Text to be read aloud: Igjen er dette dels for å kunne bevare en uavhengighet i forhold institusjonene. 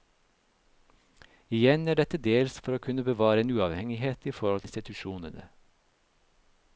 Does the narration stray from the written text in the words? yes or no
no